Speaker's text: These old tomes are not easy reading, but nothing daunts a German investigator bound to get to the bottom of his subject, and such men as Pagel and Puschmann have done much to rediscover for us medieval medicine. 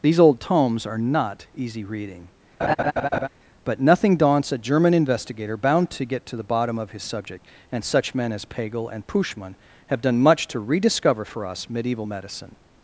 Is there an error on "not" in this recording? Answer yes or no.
no